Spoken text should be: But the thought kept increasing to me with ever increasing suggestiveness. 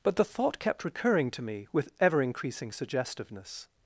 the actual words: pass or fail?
fail